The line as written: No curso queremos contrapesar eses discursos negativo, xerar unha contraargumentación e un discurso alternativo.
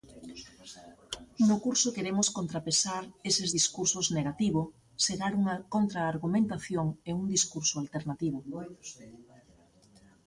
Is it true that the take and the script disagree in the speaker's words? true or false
false